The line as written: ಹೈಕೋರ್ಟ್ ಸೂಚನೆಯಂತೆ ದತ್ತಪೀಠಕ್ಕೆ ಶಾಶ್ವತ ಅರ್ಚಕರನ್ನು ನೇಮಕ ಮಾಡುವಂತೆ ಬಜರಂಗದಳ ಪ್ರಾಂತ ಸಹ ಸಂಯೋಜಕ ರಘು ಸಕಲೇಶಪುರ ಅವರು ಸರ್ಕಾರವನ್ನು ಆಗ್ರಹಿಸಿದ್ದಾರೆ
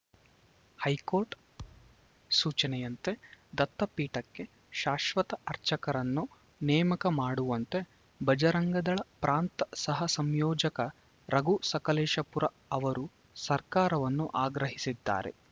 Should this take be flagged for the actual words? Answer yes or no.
no